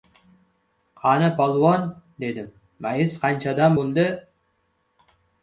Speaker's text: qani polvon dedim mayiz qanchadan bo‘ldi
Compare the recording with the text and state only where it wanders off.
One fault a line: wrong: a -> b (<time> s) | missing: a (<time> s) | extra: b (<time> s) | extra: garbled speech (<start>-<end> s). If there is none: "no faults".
no faults